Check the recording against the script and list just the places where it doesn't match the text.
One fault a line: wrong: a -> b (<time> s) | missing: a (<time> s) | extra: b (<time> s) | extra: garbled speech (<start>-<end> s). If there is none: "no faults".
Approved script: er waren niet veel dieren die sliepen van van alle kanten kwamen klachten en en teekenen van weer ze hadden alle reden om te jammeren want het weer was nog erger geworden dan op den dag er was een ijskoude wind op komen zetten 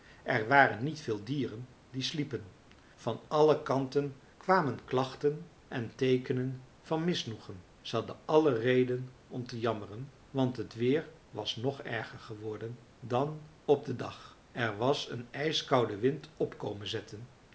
missing: van (3.2 s)
missing: en (6.0 s)
wrong: weer -> misnoegen (7.0 s)